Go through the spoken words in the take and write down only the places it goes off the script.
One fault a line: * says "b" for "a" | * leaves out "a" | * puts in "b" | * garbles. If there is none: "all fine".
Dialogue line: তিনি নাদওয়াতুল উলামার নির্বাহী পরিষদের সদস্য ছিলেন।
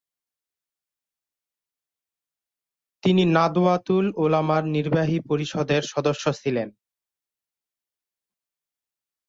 all fine